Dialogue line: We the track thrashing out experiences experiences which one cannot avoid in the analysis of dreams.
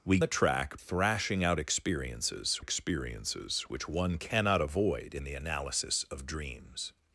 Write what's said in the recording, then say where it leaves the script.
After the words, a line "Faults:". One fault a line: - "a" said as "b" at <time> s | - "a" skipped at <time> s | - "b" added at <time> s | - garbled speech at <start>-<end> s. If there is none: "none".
We the track thrashing out experiences experiences which one cannot avoid in the analysis of dreams.
Faults:
none